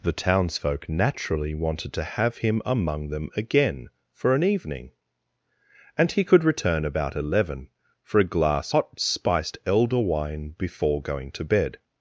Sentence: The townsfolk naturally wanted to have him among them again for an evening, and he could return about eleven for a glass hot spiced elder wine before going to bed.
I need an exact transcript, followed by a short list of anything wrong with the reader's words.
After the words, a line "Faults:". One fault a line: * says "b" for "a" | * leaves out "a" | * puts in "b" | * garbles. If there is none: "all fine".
The townsfolk naturally wanted to have him among them again for an evening, and he could return about eleven for a glass hot spiced elder wine before going to bed.
Faults:
all fine